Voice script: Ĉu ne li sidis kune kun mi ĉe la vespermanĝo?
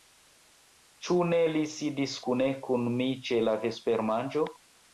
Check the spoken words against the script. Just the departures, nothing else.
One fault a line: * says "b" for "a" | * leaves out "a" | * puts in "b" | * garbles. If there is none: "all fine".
all fine